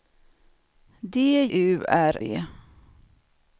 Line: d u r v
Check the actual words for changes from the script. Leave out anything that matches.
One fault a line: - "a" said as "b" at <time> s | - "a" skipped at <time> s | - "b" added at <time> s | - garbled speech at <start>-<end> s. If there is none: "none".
none